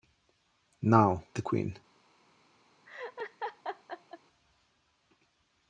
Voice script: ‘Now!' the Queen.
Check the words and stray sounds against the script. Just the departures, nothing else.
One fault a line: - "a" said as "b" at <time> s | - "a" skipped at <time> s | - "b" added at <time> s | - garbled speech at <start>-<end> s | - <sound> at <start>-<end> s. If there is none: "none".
- laugh at 2.9-4.2 s